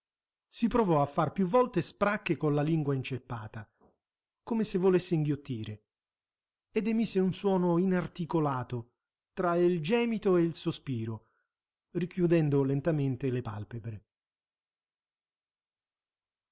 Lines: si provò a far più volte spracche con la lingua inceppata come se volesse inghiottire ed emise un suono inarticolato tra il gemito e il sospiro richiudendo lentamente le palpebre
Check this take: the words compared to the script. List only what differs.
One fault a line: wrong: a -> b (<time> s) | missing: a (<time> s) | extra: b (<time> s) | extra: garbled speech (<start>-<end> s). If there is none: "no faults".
no faults